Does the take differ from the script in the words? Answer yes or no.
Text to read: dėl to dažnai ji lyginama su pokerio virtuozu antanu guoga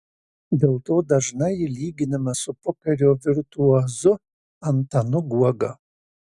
no